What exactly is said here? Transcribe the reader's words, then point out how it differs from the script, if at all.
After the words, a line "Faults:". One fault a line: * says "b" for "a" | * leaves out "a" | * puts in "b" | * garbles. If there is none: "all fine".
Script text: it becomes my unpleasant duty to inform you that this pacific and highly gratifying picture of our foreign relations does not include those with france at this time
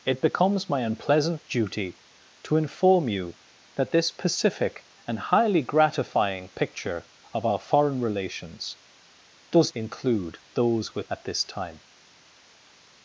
it becomes my unpleasant duty to inform you that this pacific and highly gratifying picture of our foreign relations does include those with at this time
Faults:
* leaves out "not"
* leaves out "france"